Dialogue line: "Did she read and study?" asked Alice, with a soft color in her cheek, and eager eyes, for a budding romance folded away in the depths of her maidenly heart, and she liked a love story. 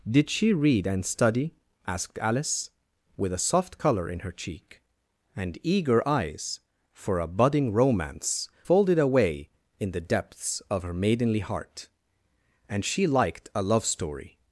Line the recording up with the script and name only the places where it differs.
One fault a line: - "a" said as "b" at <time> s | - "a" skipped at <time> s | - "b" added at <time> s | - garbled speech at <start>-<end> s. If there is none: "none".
none